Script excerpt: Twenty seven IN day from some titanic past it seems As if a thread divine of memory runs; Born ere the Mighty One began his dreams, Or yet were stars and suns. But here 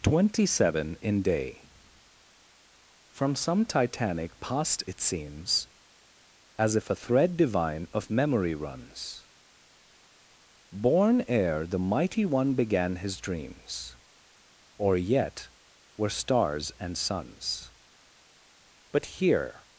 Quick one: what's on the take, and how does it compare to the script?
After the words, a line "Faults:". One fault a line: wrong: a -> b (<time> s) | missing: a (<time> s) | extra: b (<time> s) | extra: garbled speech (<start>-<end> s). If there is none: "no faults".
Twenty seven IN day from some titanic past it seems As if a thread divine of memory runs; Born ere the Mighty One began his dreams, Or yet were stars and suns. But here
Faults:
no faults